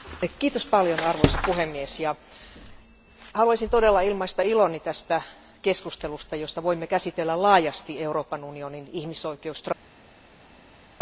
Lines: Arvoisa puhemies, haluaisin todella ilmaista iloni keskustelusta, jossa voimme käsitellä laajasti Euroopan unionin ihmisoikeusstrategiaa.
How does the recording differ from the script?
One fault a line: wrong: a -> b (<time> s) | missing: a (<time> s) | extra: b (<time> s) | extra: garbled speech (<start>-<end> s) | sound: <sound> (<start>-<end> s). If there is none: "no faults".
extra: tästä (4.8 s)